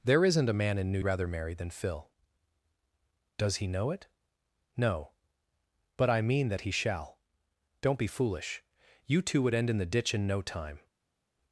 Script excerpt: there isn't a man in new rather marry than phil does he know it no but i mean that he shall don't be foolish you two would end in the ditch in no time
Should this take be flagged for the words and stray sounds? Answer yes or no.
no